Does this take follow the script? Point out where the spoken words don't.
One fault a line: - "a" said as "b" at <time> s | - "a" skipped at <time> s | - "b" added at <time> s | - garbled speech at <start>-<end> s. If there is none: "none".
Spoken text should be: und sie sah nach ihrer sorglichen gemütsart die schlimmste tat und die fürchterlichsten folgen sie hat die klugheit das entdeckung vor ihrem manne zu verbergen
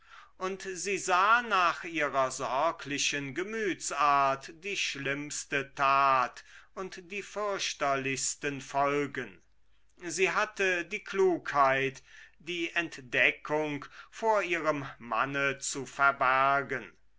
- "hat" said as "hatte" at 10.3 s
- "das" said as "die" at 12.4 s